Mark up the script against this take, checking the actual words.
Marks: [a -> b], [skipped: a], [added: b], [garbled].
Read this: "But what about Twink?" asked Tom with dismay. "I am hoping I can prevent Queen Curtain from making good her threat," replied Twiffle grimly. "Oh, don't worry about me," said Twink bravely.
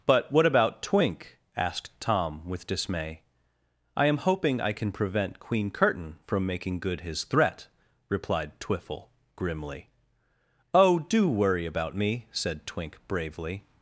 "But what about Twink?" asked Tom with dismay. "I am hoping I can prevent Queen Curtain from making good [her -> his] threat," replied Twiffle grimly. "Oh, [don't -> do] worry about me," said Twink bravely.